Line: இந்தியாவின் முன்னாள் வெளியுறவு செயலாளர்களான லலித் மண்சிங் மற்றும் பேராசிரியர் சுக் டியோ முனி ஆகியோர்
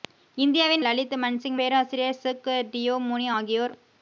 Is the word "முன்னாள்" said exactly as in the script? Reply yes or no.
no